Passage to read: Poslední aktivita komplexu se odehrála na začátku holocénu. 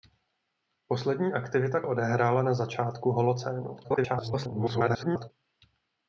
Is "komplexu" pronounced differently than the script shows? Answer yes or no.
yes